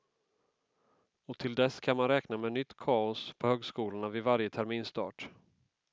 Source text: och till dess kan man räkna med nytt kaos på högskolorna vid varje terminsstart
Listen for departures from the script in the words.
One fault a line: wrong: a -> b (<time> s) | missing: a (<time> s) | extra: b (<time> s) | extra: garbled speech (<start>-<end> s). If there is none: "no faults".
no faults